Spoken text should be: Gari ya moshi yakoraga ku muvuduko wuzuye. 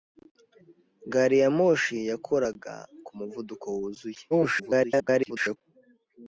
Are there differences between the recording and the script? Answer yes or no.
yes